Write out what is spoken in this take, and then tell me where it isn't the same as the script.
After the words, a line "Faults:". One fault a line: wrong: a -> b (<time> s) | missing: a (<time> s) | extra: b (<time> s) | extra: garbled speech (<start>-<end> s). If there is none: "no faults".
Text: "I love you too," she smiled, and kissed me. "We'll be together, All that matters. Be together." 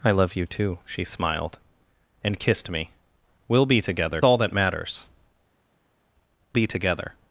"I love you too," she smiled, and kissed me. "We'll be together, All that matters. Be together."
Faults:
no faults